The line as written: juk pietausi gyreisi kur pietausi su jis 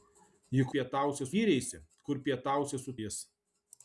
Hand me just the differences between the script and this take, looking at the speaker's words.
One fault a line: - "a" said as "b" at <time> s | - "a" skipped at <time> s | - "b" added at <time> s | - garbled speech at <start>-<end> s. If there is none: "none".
none